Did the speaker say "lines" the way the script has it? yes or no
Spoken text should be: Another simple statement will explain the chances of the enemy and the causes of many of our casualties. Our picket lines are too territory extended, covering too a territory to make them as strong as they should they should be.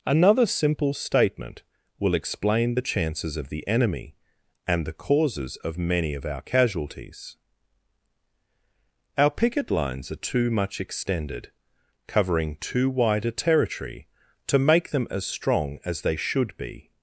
yes